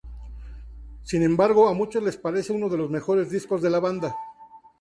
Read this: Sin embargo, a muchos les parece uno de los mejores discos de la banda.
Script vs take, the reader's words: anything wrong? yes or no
no